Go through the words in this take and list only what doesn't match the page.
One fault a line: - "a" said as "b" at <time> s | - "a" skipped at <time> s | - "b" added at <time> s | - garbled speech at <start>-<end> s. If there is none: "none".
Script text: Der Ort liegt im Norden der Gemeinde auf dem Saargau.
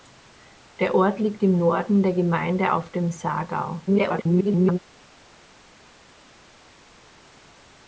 - garbled speech at 3.9-4.8 s